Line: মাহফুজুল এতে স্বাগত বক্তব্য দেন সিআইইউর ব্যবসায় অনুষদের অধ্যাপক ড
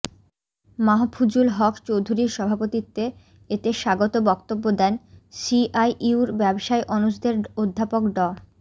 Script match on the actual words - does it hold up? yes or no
no